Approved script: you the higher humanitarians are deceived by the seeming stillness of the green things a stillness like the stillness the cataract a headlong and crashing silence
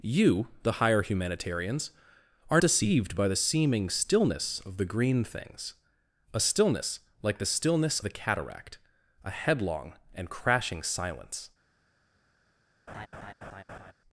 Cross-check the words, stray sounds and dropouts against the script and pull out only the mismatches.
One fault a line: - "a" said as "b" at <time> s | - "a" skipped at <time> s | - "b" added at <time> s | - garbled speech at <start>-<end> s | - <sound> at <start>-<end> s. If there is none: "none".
- laugh at 12.9-13.9 s